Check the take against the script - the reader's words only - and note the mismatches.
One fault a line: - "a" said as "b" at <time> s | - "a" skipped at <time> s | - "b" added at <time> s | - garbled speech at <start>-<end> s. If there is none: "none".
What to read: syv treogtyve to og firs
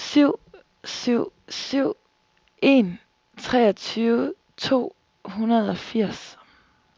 - "syv syv en" added at 0.8 s
- "hundrede" added at 5.2 s